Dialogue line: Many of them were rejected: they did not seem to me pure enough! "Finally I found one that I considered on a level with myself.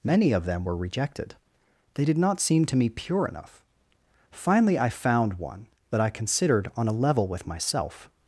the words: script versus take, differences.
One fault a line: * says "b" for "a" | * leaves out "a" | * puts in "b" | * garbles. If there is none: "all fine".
all fine